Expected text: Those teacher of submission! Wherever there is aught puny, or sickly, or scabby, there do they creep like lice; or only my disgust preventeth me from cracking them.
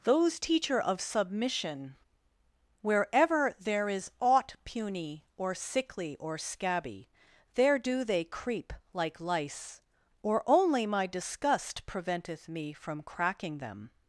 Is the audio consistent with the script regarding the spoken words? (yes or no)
yes